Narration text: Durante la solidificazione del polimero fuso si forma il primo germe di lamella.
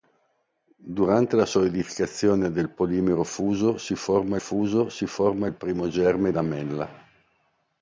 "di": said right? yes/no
no